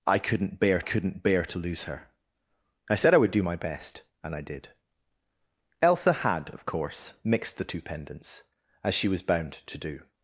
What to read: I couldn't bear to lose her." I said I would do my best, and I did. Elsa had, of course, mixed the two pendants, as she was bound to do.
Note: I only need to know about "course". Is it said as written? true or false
true